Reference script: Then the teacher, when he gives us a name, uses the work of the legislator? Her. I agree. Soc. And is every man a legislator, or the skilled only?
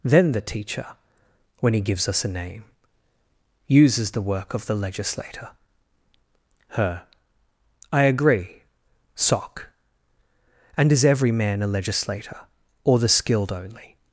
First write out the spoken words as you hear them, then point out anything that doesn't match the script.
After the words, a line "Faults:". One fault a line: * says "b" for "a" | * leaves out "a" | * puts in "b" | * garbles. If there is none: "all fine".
Then the teacher, when he gives us a name, uses the work of the legislator? Her. I agree. Soc. And is every man a legislator, or the skilled only?
Faults:
all fine